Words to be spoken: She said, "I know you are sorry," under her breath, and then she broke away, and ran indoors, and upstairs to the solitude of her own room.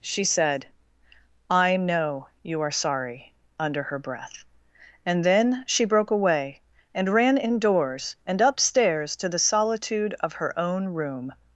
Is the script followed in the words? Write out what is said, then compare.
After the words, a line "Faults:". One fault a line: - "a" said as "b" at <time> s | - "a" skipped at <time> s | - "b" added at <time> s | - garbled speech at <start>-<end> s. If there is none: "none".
She said, "I know you are sorry," under her breath, and then she broke away, and ran indoors, and upstairs to the solitude of her own room.
Faults:
none